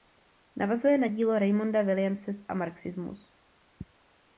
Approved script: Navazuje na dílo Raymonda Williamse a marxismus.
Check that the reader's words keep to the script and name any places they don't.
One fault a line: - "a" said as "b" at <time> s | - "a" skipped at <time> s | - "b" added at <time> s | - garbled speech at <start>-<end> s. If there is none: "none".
none